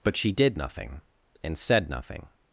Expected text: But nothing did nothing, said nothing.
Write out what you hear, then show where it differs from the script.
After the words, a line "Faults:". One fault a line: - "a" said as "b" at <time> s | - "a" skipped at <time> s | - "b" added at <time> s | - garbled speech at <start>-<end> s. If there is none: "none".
But she did nothing, and said nothing.
Faults:
- "nothing" said as "she" at 0.2 s
- "and" added at 1.4 s